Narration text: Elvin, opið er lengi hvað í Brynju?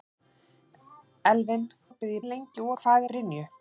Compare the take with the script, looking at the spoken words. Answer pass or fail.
pass